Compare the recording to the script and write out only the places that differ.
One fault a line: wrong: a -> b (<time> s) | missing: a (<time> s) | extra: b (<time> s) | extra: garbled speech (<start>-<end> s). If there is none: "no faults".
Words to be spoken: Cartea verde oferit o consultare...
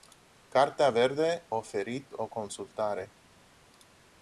no faults